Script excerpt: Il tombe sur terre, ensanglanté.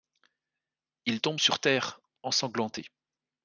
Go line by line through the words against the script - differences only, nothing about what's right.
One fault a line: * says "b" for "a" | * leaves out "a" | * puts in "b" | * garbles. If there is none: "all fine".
all fine